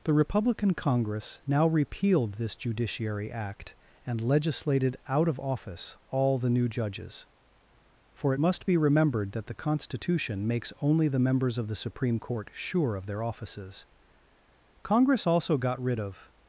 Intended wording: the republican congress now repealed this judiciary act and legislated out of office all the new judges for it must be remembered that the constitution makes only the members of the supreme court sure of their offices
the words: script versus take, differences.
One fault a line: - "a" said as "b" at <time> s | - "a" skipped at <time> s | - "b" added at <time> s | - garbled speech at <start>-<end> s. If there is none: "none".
- "congress also got rid of" added at 14.8 s